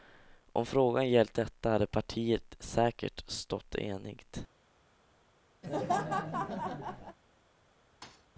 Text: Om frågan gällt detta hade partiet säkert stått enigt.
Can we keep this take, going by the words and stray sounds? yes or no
no